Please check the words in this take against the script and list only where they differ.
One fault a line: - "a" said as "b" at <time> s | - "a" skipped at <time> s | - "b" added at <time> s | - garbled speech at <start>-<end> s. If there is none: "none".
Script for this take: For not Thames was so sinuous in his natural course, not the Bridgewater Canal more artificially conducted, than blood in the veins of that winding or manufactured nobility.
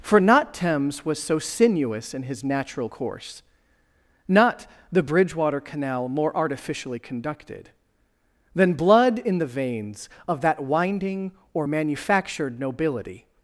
none